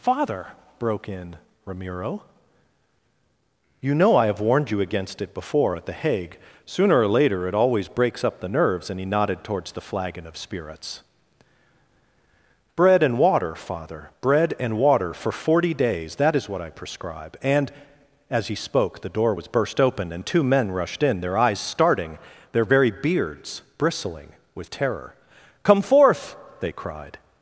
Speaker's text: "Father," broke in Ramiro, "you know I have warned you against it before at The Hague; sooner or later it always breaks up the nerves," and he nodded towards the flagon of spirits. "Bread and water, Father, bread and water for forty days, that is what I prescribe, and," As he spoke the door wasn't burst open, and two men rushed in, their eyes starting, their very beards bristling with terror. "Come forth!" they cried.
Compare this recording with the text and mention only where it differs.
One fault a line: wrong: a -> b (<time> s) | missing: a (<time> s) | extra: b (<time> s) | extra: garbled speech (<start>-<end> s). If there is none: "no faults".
wrong: wasn't -> was (19.3 s)